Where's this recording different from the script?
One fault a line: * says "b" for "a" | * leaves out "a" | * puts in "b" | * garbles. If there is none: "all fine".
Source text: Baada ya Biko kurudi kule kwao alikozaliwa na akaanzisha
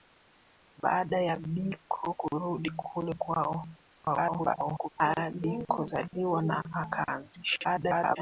* garbles
* garbles